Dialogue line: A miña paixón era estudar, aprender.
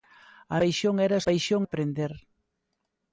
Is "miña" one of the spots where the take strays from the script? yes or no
yes